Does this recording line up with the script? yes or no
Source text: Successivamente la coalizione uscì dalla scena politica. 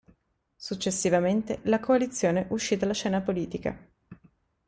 yes